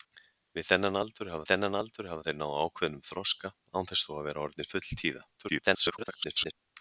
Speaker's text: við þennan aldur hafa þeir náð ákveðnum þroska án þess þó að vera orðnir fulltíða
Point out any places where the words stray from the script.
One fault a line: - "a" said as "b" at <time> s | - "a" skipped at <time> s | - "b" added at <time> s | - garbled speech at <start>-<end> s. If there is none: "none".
- "þennan aldur hafa" added at 1.5 s
- garbled speech at 5.4-6.5 s